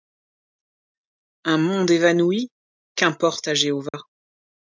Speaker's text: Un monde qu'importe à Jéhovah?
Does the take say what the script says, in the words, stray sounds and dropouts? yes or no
no